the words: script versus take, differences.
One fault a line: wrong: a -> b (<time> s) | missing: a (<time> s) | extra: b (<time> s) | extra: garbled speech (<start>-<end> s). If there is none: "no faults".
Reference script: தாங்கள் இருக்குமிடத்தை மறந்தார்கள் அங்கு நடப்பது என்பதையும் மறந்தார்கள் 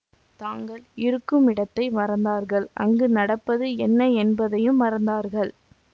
extra: என்ன (3.9 s)